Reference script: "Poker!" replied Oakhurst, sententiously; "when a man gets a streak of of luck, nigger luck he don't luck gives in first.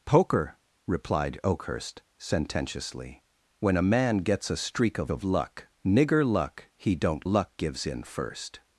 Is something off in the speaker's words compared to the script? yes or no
no